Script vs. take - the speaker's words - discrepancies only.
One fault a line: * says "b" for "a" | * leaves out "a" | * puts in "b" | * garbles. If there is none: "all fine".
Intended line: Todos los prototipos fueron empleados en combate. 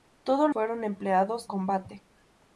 * leaves out "los prototipos"
* leaves out "en"